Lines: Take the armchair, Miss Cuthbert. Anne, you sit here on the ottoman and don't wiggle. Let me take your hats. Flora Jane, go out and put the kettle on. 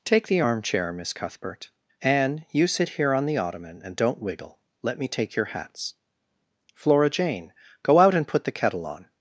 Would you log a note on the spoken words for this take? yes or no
no